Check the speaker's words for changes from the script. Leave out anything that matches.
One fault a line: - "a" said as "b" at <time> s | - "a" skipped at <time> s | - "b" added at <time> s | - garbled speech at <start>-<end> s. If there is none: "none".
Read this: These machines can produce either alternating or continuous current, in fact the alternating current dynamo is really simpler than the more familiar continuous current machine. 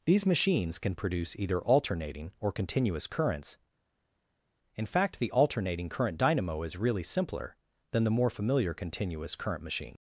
- "current" said as "currents" at 3.0 s